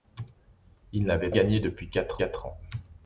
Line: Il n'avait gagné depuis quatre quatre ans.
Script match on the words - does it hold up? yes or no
yes